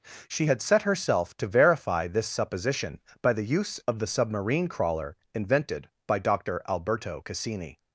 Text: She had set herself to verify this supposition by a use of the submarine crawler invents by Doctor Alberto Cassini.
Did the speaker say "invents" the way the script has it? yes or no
no